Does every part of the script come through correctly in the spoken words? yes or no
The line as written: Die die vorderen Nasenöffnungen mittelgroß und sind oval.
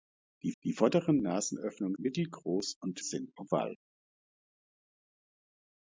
yes